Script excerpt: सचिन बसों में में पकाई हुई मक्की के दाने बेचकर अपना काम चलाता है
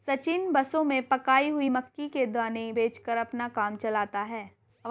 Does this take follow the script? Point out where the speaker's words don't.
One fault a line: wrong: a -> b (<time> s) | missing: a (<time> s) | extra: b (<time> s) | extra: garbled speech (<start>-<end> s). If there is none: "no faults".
missing: में (1.0 s)